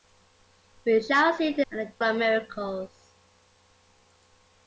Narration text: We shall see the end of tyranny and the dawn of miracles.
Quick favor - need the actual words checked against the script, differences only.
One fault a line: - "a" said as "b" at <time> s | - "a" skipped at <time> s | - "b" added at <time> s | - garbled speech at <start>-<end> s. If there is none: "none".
- "end of tyranny" skipped at 1.7 s
- "dawn" skipped at 1.9 s